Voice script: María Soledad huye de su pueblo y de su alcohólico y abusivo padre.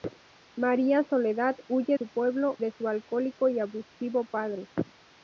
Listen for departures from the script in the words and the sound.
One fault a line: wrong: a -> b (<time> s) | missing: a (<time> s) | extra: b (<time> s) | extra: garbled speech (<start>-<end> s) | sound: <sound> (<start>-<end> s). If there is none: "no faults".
missing: de (2.0 s)
missing: y (2.6 s)